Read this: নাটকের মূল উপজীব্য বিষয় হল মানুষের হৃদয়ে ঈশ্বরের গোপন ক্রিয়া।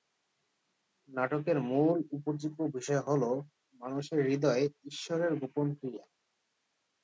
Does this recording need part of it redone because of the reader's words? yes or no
no